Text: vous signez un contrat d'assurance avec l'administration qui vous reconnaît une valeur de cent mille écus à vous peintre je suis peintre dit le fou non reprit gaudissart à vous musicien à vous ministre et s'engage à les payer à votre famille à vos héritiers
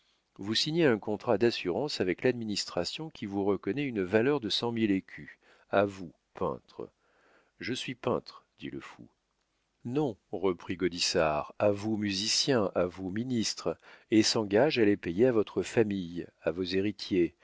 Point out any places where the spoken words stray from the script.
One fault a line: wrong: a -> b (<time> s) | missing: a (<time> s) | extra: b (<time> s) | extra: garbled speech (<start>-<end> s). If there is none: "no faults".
no faults